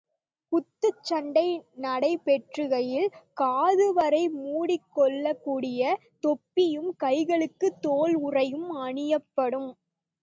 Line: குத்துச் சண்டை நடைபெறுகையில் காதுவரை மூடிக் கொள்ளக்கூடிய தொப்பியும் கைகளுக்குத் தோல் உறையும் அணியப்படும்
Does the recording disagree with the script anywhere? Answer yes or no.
no